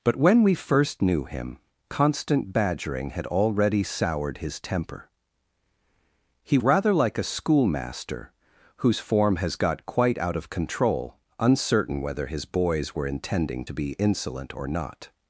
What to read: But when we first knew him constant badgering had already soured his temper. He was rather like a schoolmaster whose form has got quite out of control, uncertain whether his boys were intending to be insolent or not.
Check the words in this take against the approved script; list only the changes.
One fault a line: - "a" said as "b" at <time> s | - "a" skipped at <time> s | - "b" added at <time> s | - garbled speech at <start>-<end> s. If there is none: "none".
- "was" skipped at 6.6 s